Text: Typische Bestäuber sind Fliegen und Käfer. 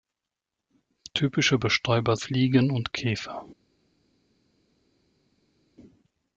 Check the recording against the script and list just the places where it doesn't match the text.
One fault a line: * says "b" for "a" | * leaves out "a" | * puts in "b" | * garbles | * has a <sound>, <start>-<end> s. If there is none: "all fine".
* leaves out "sind"